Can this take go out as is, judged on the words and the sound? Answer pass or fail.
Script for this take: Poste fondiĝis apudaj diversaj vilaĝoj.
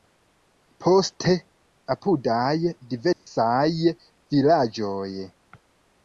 fail